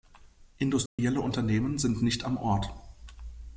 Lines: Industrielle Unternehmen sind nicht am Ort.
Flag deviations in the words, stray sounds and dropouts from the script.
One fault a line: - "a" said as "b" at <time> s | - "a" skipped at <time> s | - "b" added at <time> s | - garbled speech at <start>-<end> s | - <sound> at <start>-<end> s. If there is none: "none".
- dropout at 0.9-1.0 s